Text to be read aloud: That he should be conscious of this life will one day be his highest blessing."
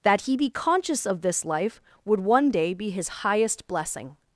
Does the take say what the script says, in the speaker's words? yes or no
no